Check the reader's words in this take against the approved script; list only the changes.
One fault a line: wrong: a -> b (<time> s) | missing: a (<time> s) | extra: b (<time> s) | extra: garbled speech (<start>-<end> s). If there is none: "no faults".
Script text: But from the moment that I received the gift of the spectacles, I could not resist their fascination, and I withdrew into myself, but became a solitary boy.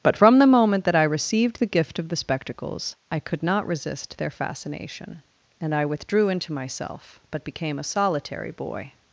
no faults